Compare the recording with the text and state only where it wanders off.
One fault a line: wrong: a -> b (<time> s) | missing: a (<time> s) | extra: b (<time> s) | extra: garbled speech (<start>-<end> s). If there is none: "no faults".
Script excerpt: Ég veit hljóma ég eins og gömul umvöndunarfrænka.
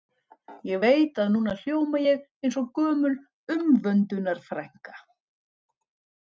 extra: að núna (1.2 s)